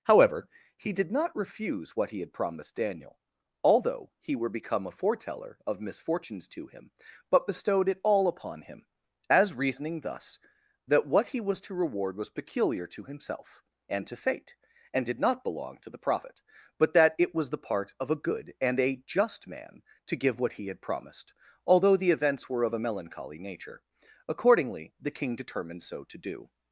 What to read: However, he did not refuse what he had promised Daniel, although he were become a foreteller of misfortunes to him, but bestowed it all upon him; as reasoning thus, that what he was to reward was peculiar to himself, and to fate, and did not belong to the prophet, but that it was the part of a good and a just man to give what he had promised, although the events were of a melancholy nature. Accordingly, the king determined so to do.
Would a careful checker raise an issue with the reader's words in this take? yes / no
no